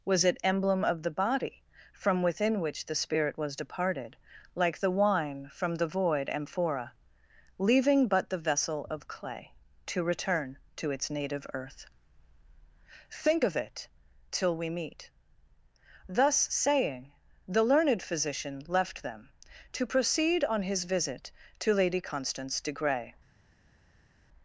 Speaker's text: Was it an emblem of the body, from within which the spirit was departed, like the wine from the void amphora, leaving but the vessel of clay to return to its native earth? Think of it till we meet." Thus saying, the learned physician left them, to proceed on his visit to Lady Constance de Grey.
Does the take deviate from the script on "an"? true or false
true